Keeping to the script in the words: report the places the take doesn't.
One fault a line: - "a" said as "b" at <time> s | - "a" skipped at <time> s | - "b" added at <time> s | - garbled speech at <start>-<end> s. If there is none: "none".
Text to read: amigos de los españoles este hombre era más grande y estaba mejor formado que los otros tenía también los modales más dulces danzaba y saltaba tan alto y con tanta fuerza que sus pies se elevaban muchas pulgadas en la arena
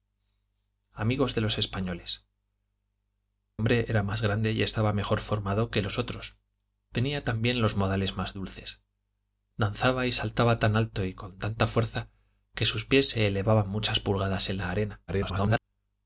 - "este" skipped at 2.2 s
- garbled speech at 15.1-15.6 s